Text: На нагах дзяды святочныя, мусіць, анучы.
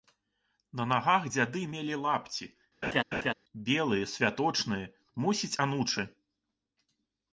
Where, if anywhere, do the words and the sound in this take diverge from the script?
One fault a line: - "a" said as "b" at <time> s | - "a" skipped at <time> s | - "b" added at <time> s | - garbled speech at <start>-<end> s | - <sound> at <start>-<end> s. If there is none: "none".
- "мелі лапці белыя" added at 1.7 s
- laugh at 2.8-3.3 s